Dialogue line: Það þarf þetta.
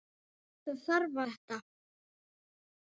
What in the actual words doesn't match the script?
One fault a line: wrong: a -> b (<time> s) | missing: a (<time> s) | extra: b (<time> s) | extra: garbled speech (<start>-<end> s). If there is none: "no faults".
no faults